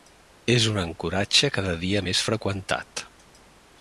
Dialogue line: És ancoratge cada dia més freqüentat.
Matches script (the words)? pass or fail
fail